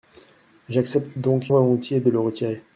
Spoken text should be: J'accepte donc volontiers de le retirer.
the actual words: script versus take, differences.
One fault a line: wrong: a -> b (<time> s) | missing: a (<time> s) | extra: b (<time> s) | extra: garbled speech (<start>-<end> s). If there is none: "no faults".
no faults